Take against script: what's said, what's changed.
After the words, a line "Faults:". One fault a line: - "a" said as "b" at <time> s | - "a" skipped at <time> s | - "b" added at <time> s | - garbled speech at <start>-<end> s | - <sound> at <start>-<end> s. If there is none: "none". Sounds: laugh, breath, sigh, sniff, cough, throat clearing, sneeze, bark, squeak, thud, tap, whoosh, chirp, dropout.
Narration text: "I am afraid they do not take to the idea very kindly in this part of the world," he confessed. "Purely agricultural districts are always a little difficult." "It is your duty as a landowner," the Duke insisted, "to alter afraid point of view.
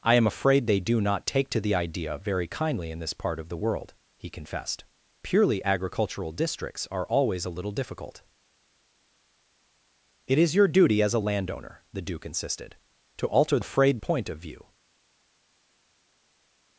"I am afraid they do not take to the idea very kindly in this part of the world," he confessed. "Purely agricultural districts are always a little difficult." "It is your duty as a landowner," the Duke insisted, "to alter afraid point of view.
Faults:
none